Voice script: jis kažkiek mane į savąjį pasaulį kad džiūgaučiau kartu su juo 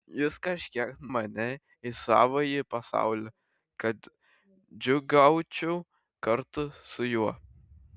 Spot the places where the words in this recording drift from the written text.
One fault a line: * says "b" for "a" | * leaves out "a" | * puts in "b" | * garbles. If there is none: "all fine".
all fine